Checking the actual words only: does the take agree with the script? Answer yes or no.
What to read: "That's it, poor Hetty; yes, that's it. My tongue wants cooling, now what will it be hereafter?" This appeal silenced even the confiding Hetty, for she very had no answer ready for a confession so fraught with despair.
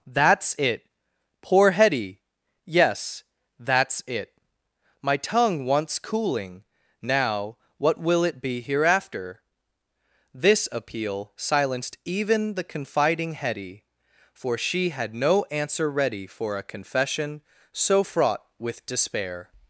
no